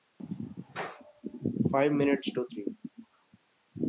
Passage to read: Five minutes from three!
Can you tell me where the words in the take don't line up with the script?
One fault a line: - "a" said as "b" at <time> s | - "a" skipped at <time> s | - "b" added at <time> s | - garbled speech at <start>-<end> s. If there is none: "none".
- "from" said as "to" at 2.3 s